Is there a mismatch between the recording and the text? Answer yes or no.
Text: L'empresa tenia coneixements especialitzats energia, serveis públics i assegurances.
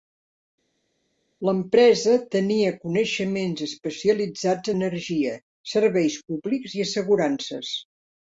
no